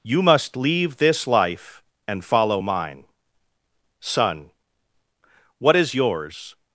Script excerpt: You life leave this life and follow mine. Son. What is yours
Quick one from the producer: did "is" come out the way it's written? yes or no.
yes